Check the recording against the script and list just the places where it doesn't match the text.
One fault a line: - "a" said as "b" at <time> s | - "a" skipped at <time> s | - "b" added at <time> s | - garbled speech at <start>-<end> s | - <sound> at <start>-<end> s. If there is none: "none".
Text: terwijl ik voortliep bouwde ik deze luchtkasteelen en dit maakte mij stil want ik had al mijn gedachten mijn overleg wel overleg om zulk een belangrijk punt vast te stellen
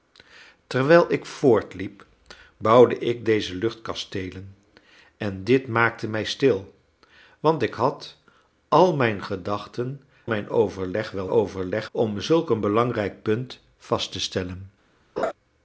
- laugh at 15.2-15.3 s